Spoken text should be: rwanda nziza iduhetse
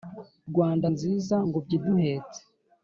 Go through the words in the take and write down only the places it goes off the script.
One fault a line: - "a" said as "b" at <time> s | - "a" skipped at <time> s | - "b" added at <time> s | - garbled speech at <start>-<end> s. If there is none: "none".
- "ngobyi" added at 1.5 s